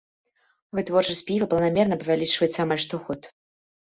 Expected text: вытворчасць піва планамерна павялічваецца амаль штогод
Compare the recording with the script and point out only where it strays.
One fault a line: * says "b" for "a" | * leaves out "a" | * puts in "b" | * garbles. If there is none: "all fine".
all fine